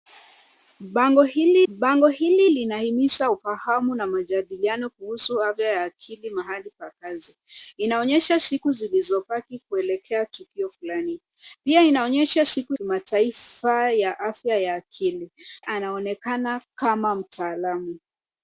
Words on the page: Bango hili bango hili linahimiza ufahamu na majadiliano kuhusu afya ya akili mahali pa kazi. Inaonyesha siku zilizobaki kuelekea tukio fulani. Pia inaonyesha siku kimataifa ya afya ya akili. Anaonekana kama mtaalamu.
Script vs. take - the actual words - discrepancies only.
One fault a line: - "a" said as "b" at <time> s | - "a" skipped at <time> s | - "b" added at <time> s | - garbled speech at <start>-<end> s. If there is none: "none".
none